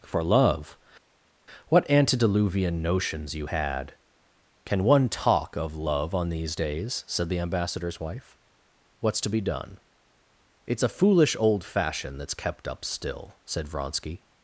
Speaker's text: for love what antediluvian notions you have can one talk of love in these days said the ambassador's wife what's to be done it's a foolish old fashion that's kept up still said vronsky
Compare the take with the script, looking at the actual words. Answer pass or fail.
fail